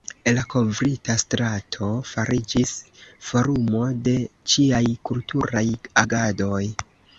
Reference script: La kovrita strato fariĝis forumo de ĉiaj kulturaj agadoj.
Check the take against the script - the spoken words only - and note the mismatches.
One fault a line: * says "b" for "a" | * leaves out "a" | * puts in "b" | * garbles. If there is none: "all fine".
all fine